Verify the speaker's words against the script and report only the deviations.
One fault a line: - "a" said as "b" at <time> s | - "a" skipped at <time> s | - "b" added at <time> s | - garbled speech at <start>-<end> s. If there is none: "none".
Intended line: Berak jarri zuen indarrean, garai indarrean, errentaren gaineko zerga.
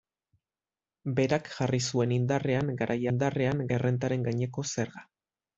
none